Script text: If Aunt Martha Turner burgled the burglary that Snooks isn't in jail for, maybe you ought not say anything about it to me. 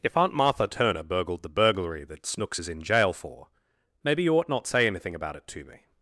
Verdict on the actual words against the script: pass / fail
fail